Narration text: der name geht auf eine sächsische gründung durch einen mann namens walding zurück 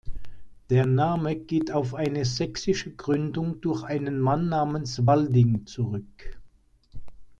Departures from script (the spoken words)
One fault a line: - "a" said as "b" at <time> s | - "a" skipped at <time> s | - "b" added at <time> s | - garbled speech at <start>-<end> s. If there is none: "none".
none